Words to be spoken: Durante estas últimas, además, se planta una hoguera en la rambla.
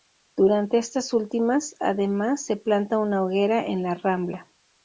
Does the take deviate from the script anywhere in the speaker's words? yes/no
no